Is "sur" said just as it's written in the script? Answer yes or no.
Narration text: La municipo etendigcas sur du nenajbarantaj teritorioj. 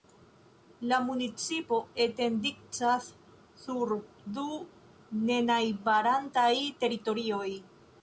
yes